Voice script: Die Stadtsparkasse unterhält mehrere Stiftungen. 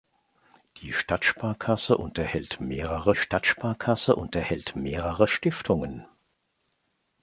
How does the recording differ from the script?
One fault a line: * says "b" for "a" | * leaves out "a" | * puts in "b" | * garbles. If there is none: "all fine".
* puts in "Stadtsparkasse unterhält mehrere"